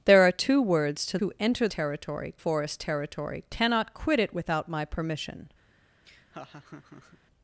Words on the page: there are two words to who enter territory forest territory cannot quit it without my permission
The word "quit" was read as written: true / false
true